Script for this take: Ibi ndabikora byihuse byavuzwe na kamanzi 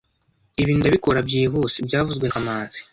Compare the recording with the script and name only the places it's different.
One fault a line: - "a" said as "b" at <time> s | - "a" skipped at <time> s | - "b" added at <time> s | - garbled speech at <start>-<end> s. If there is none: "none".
- "na" skipped at 2.3 s